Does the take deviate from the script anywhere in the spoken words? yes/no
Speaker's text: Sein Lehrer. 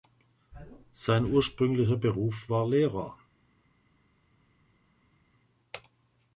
yes